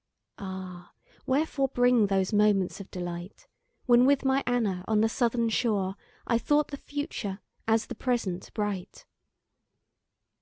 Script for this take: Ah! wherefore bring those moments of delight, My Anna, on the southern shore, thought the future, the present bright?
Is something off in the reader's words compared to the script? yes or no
yes